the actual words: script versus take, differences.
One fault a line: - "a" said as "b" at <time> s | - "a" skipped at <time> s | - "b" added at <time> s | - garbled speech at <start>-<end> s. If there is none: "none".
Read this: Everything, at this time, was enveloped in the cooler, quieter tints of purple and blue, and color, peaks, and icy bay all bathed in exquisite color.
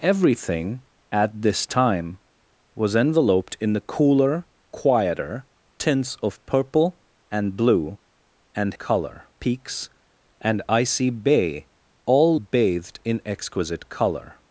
none